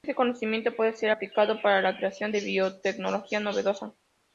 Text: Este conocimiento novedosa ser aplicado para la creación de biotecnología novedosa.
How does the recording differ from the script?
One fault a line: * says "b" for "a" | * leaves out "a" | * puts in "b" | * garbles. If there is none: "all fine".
* says "puede" for "novedosa"